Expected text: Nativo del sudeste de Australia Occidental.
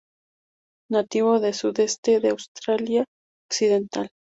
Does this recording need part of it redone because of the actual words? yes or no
no